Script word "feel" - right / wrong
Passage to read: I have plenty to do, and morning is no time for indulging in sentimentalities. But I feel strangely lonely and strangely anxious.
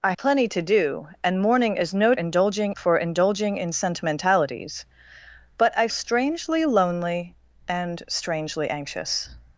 wrong